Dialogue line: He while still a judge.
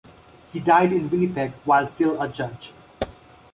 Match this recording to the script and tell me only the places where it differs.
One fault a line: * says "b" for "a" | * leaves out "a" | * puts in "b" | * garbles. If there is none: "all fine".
* puts in "died in Winnipeg"